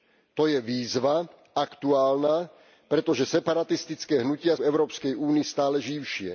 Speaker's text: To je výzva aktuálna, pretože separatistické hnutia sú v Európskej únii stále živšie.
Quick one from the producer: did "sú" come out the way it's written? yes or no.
no